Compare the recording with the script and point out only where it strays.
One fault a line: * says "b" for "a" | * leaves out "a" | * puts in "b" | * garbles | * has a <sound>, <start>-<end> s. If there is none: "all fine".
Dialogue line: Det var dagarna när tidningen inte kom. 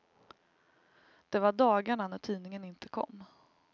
all fine